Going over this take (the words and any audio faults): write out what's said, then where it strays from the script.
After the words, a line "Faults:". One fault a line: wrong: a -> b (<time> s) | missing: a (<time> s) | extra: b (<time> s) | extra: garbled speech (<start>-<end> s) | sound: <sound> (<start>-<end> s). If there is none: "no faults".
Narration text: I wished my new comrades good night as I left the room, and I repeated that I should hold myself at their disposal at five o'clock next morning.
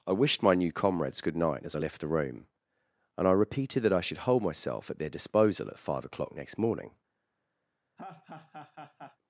I wished my new comrades good night as I left the room, and I repeated that I should hold myself at their disposal at five o'clock next morning.
Faults:
sound: laugh (8.0-9.2 s)